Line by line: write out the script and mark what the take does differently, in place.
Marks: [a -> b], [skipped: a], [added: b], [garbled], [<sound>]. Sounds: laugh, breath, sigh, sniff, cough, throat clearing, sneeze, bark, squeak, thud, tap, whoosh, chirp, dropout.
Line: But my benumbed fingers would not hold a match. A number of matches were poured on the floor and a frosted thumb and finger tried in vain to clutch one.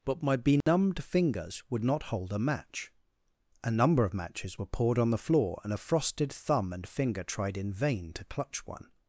But my benumbed [dropout] fingers would not hold a match. A number of matches were poured on the floor and a frosted thumb and finger tried in vain to clutch one.